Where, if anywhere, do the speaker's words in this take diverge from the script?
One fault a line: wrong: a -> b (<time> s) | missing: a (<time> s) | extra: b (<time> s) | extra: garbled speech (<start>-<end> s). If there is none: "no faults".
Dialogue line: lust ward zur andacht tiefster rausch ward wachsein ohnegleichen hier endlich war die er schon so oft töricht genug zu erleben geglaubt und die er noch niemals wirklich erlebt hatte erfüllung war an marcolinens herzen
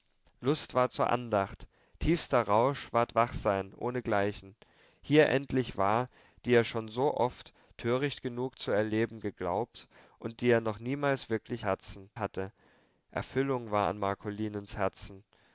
wrong: erlebt -> herzen (11.6 s)